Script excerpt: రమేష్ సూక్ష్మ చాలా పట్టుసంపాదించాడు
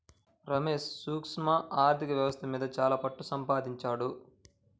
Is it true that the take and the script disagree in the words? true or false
true